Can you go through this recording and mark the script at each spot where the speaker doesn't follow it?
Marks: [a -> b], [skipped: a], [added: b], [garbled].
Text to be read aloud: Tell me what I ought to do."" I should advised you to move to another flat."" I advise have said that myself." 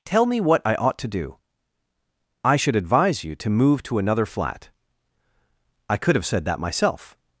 Tell me what I ought to do."" I should [advised -> advise] you to move to another flat."" I [advise -> could] have said that myself."